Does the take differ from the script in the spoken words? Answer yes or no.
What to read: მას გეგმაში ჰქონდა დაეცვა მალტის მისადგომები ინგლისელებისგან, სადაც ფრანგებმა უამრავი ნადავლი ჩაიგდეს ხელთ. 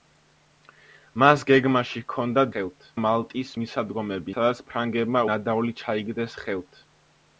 yes